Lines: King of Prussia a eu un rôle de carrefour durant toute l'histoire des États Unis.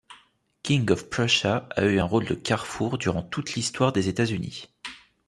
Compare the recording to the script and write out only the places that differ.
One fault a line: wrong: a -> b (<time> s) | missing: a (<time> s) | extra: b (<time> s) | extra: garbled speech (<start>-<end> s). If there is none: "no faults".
no faults